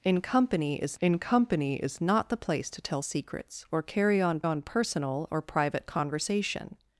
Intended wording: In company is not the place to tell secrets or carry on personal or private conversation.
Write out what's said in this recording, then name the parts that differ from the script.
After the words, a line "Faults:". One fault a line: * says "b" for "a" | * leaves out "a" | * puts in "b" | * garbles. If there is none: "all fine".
In company is in company is not the place to tell secrets or carry on on personal or private conversation.
Faults:
* puts in "in company is"
* puts in "on"